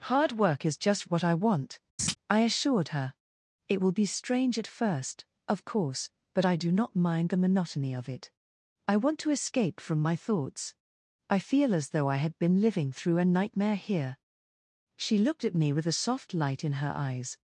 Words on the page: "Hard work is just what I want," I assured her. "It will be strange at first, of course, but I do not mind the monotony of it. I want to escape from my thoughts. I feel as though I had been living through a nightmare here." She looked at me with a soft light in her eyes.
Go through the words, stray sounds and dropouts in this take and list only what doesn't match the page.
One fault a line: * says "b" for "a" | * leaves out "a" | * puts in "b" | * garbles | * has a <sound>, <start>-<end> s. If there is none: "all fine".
* has a laugh, 2.0-2.2 s